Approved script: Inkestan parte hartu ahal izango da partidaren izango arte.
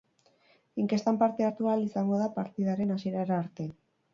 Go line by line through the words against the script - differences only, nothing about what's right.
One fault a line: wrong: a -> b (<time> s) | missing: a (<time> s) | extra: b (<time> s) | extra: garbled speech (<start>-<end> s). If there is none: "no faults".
wrong: izango -> hasierara (3.0 s)